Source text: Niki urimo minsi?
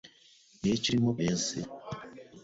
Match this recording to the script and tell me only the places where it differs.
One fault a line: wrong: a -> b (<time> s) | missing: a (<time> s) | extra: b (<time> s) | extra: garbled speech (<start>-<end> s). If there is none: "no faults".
no faults